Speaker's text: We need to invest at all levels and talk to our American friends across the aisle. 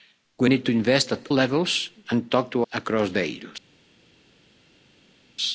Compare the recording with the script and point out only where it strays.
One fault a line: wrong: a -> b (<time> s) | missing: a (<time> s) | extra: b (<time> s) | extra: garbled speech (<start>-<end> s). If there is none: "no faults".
missing: all (1.3 s)
missing: our American friends (2.7 s)